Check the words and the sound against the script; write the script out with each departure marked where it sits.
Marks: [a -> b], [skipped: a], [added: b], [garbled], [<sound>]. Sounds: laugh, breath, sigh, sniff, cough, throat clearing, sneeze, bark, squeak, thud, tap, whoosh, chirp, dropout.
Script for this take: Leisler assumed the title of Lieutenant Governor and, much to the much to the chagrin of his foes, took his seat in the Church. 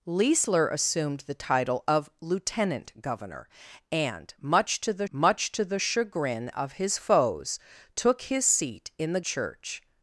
Leisler assumed the title of Lieutenant Governor and, much to the much to the chagrin of his foes, took his seat in the Church.